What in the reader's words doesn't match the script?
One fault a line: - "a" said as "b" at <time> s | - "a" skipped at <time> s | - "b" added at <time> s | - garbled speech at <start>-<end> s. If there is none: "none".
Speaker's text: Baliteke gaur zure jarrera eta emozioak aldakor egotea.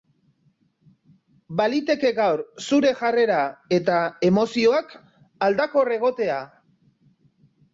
none